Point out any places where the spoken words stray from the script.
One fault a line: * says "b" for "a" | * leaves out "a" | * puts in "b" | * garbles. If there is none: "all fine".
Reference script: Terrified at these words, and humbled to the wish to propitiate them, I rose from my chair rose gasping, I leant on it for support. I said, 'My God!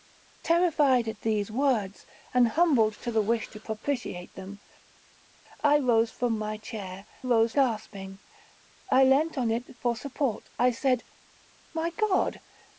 all fine